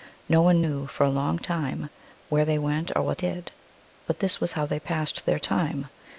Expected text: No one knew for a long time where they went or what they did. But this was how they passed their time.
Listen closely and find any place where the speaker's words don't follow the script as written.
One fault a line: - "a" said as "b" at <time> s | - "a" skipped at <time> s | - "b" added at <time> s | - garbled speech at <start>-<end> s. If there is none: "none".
- "they" skipped at 3.2 s